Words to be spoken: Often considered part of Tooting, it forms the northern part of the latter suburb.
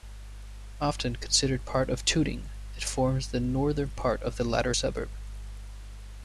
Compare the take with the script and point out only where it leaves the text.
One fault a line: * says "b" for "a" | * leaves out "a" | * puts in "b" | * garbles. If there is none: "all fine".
all fine